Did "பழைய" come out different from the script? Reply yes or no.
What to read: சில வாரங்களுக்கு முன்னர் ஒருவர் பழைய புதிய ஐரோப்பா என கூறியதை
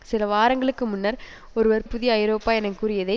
yes